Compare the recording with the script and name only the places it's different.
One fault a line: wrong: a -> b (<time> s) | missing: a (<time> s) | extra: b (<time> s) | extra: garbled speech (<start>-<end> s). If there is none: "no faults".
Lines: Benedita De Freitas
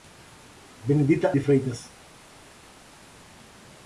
no faults